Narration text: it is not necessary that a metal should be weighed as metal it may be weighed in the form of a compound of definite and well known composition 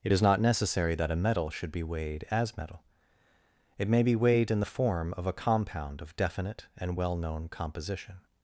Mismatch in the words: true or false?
false